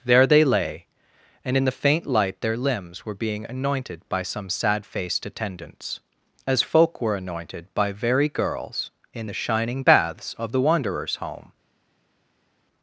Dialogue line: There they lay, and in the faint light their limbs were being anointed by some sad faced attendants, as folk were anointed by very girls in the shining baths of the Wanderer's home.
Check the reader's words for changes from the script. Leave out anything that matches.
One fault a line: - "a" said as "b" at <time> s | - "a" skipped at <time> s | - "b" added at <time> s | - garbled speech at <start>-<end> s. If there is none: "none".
none